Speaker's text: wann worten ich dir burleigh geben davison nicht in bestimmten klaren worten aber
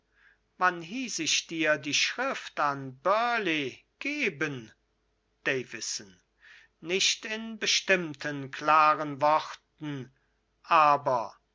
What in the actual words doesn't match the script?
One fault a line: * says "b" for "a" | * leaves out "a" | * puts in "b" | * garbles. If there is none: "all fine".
* says "hieß" for "worten"
* puts in "die schrift an"